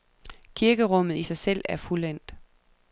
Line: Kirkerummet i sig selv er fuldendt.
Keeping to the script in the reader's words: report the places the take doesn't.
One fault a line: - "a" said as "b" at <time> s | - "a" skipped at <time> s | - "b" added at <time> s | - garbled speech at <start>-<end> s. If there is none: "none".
none